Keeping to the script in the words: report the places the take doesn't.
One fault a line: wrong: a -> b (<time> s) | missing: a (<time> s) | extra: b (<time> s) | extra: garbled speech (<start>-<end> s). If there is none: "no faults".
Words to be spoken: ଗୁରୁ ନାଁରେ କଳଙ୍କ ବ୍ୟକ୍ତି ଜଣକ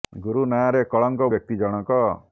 no faults